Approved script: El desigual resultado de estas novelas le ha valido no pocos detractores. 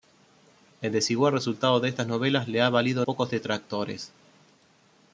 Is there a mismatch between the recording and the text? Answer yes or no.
yes